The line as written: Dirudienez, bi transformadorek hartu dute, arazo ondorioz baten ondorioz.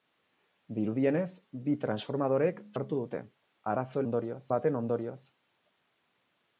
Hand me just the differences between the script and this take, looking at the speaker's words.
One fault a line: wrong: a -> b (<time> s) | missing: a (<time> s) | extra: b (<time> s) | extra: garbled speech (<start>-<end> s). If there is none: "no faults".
no faults